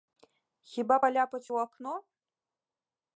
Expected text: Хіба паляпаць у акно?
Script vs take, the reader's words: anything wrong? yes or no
no